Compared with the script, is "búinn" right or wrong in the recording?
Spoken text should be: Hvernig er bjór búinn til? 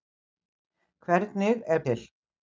wrong